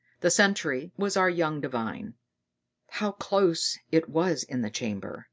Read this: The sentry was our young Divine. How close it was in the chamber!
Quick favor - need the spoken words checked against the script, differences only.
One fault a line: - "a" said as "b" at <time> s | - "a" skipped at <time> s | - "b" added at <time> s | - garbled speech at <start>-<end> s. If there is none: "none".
none